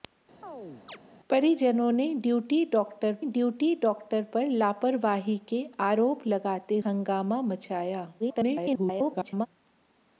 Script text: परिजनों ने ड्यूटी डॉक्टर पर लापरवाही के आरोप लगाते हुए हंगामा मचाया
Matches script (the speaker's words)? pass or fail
fail